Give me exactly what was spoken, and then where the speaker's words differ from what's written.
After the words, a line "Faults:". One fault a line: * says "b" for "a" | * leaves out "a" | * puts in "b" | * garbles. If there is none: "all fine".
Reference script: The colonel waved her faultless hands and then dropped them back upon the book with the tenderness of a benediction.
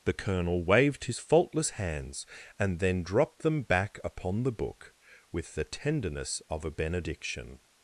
The colonel waved his faultless hands and then dropped them back upon the book with the tenderness of a benediction.
Faults:
* says "his" for "her"